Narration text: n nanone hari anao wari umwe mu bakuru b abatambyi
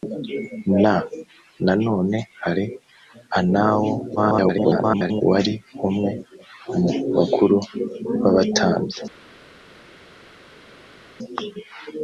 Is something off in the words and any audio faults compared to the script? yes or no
yes